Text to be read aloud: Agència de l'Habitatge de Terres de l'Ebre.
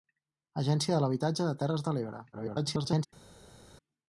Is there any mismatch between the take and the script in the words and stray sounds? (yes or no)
yes